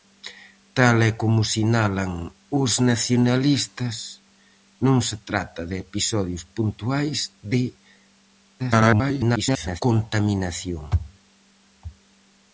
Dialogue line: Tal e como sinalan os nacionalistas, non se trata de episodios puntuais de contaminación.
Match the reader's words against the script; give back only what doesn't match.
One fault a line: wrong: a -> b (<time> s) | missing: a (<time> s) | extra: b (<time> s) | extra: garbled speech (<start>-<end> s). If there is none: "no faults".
extra: garbled speech (8.6-9.8 s)